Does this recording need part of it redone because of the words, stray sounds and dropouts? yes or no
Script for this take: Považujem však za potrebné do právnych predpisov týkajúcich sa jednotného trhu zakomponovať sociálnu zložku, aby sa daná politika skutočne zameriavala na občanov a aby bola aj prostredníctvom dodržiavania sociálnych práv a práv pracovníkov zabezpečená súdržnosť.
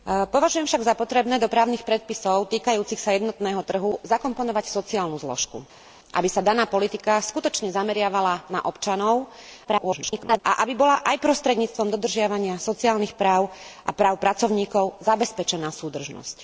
yes